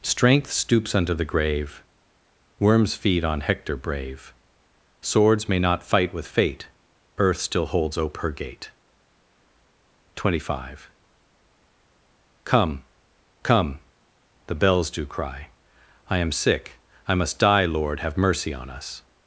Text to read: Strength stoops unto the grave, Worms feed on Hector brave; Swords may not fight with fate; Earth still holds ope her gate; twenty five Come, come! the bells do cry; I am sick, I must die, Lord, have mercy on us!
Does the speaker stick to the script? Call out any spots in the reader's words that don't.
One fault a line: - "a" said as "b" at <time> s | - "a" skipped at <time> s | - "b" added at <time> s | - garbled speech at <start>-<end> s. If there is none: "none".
none